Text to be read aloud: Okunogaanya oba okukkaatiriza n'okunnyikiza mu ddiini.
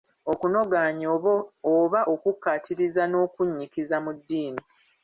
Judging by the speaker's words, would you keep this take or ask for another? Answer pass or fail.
pass